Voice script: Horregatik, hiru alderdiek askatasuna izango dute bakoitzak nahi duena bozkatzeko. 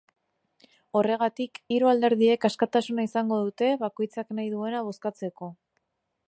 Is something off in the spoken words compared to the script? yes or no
no